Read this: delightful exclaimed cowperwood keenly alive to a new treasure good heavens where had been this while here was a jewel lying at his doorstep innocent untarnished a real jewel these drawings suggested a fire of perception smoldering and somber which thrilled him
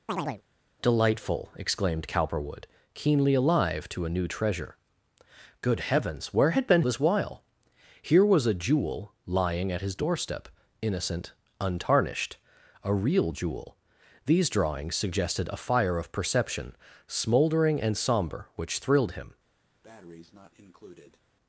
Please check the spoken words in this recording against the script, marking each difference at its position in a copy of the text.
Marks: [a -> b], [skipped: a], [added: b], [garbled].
delightful exclaimed cowperwood keenly alive to a new treasure good heavens where had been this while here was a jewel lying at his doorstep innocent untarnished a real jewel these drawings suggested a fire of perception smoldering and somber which thrilled him